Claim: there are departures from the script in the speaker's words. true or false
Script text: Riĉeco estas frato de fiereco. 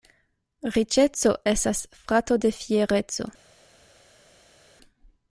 false